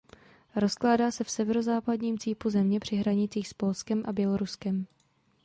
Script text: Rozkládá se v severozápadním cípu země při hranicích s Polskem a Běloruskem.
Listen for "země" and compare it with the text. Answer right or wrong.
right